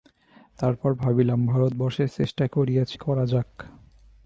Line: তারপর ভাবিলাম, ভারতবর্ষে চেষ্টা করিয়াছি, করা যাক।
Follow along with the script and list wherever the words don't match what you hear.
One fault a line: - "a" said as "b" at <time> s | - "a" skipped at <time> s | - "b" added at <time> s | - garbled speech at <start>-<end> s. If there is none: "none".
none